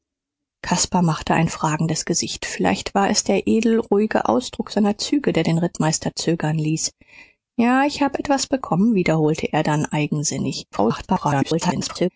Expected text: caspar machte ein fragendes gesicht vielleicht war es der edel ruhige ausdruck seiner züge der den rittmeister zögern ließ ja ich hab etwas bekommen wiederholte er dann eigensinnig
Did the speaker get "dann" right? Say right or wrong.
right